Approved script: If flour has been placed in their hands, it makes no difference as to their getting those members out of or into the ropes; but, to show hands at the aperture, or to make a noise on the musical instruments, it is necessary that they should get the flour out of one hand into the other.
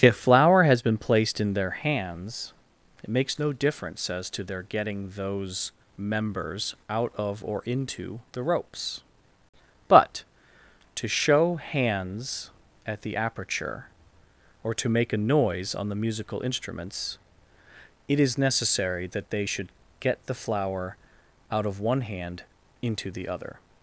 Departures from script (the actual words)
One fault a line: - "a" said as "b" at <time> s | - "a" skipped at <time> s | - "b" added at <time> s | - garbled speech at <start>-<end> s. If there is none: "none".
none